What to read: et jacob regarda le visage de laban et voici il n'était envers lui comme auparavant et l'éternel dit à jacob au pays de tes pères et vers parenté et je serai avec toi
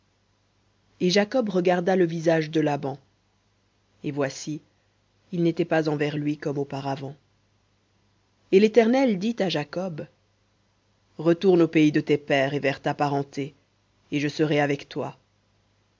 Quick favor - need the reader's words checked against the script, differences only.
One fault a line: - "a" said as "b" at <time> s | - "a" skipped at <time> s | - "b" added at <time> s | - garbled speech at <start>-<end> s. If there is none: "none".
- "pas" added at 5.7 s
- "retourne" added at 11.2 s
- "ta" added at 12.8 s